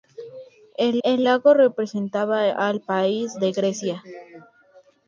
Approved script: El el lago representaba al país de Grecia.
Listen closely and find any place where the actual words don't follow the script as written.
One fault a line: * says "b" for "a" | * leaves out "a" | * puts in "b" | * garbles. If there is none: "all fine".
all fine